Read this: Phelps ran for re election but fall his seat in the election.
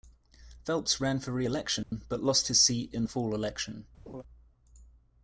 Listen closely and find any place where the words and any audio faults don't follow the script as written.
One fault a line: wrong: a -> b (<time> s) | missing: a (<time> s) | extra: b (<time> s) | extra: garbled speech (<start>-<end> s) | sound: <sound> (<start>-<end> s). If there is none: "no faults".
sound: dropout (1.8-1.9 s)
wrong: fall -> lost (2.2 s)
extra: fall (3.1 s)
sound: laugh (4.1-4.2 s)